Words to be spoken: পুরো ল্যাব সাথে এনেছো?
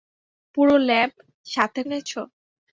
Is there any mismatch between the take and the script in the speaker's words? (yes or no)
no